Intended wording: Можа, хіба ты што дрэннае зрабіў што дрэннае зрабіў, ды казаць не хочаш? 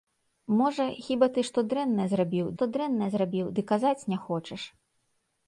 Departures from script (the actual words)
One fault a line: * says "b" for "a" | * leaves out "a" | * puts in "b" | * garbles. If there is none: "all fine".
all fine